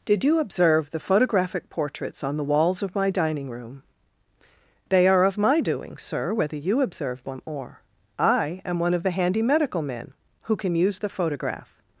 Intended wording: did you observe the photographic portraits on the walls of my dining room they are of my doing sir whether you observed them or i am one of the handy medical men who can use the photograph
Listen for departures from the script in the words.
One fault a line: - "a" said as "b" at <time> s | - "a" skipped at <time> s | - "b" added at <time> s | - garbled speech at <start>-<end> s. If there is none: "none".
none